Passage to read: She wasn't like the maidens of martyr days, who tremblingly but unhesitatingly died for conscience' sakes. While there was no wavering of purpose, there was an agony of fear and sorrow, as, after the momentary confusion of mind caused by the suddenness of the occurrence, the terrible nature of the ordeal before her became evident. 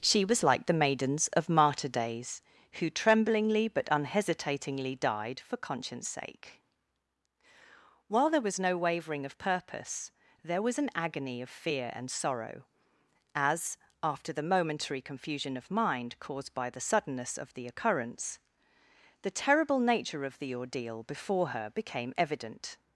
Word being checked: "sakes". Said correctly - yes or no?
no